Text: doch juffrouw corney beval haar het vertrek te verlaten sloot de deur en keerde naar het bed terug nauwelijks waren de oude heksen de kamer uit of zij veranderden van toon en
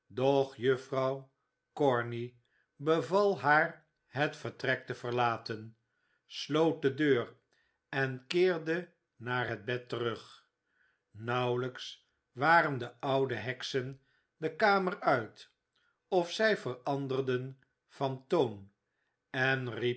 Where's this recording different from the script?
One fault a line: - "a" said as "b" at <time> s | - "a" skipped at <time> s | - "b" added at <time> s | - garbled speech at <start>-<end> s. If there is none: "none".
none